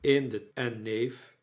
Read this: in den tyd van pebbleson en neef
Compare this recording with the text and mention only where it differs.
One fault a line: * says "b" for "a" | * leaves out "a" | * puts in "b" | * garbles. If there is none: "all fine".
* leaves out "tyd van pebbleson"